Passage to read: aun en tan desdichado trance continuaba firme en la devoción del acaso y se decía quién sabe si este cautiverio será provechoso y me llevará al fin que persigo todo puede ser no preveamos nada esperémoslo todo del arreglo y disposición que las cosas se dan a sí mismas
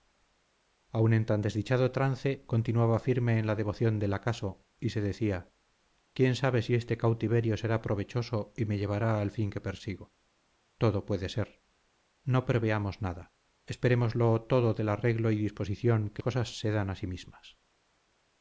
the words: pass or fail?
fail